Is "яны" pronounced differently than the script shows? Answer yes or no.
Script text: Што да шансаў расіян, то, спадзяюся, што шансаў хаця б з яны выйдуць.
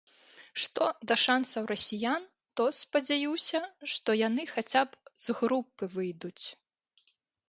yes